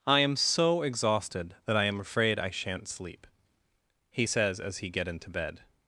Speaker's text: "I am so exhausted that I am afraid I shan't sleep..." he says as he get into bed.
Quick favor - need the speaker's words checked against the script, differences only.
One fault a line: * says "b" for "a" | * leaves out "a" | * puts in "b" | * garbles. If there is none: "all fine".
all fine